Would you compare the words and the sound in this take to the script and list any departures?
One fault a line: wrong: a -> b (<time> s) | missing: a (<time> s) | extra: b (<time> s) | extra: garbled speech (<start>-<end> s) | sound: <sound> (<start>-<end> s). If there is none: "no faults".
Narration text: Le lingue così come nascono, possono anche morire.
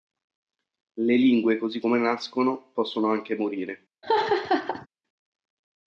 sound: laugh (4.0-4.9 s)